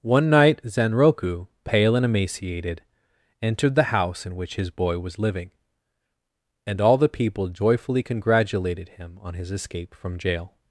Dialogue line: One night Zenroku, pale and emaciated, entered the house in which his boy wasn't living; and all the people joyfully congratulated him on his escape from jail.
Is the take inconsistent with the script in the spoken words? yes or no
yes